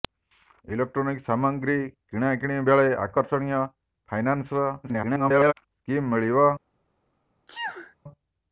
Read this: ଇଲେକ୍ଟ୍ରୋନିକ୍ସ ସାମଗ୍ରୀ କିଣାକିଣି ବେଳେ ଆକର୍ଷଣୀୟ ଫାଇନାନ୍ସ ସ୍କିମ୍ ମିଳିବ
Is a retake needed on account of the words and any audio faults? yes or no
yes